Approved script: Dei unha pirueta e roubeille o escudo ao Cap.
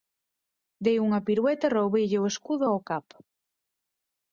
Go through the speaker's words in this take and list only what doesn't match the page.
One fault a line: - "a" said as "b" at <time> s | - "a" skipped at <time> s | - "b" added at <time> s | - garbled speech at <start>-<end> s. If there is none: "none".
none